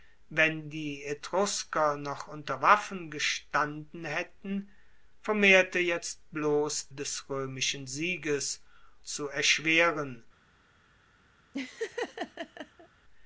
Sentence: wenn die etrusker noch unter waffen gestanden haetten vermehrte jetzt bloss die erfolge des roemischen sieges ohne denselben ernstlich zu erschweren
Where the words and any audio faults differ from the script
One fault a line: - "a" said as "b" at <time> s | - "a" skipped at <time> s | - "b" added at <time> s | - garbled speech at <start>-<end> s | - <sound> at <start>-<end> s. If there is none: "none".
- "die erfolge" skipped at 6.9 s
- "ohne denselben ernstlich" skipped at 8.6 s
- laugh at 11.5-12.9 s